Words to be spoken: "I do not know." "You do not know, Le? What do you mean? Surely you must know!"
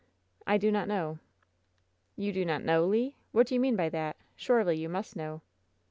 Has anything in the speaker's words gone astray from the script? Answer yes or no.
yes